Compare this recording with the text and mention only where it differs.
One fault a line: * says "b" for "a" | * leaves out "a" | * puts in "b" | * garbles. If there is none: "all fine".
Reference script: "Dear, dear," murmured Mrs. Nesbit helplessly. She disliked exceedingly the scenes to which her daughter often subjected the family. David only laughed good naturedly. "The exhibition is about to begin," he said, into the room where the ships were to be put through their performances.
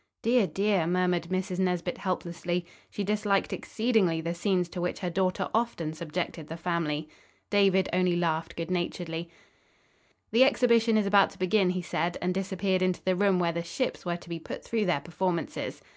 * puts in "and disappeared"